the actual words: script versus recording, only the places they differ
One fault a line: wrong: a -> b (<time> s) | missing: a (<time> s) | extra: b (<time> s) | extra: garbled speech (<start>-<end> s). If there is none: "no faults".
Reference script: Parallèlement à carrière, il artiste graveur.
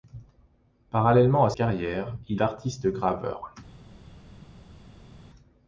no faults